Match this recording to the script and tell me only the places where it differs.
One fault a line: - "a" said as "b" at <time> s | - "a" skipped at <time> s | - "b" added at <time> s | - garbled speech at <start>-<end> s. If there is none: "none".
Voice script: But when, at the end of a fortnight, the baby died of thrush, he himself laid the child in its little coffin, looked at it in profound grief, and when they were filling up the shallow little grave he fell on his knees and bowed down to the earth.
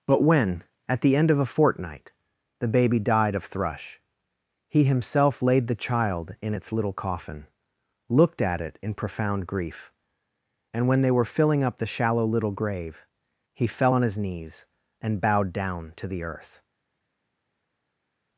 none